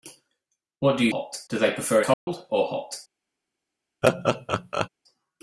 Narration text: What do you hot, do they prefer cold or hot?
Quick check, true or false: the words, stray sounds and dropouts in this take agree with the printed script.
false